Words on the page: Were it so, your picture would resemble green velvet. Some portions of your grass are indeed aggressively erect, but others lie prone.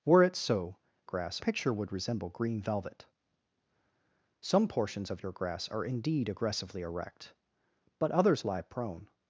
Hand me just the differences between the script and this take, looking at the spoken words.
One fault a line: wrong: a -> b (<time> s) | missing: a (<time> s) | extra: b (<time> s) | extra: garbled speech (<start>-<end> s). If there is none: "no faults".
wrong: your -> grass (1.0 s)